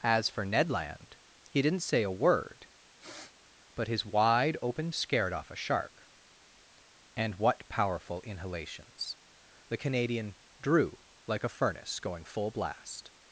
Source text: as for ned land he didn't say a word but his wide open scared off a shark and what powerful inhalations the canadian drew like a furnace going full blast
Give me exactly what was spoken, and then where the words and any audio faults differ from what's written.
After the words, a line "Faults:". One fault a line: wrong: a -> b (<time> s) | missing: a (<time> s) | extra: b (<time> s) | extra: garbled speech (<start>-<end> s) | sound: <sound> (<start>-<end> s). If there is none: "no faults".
as for ned land he didn't say a word but his wide open scared off a shark and what powerful inhalations the canadian drew like a furnace going full blast
Faults:
sound: sniff (3.0-3.3 s)